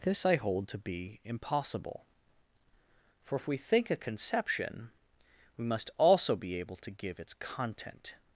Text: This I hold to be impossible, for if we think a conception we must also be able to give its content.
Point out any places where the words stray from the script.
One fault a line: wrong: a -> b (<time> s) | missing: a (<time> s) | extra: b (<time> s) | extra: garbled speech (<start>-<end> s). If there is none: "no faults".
no faults